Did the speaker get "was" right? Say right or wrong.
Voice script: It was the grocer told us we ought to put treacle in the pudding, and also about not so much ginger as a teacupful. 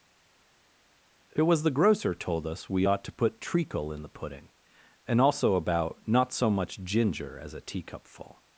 right